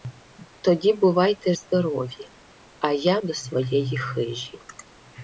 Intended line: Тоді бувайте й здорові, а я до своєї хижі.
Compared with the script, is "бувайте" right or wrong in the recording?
right